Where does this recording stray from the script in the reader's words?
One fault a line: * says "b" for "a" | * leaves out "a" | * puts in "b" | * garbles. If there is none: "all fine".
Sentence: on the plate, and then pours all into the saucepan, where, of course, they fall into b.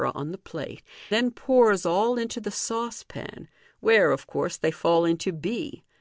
* leaves out "and"